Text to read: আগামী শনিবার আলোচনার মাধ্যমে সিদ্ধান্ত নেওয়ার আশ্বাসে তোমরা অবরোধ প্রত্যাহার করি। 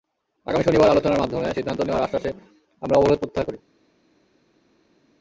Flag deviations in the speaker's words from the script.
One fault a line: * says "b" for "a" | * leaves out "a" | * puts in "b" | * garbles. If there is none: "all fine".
* says "আমরা" for "তোমরা"